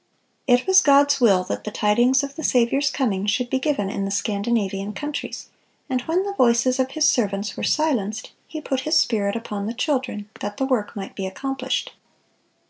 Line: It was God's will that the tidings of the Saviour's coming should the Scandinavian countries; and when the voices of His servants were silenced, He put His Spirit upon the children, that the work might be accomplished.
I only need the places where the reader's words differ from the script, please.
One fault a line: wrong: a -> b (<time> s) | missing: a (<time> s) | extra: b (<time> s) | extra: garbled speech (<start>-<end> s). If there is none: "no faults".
extra: be given in (3.5 s)